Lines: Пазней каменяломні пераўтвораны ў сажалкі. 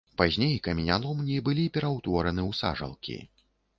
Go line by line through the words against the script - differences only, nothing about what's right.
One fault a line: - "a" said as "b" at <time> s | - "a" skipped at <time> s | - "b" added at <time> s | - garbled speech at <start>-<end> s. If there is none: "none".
- "былі" added at 1.5 s